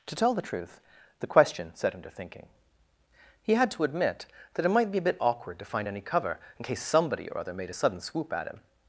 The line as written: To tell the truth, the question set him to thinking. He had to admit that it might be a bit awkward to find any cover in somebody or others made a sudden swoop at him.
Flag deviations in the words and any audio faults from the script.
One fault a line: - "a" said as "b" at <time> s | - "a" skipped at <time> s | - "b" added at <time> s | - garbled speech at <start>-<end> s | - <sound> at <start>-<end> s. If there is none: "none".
- "case" added at 6.6 s
- "others" said as "other" at 7.4 s